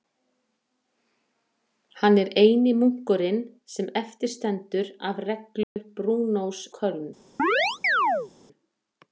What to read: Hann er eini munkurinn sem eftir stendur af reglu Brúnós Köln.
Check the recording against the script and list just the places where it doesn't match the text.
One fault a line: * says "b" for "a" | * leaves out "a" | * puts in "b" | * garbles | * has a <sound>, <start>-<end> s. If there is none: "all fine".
* has a dropout, 5.6-5.8 s
* has a chirp, 7.4-8.3 s